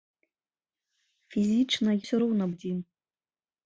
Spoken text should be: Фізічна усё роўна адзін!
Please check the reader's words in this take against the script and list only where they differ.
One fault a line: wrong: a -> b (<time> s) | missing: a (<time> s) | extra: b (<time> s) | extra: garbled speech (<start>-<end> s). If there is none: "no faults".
no faults